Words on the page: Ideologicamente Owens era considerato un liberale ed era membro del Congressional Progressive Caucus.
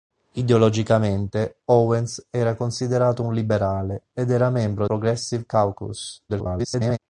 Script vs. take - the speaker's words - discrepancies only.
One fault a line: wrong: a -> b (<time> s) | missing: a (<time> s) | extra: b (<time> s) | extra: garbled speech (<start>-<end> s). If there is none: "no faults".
missing: del Congressional (4.9 s)
extra: garbled speech (6.3-7.0 s)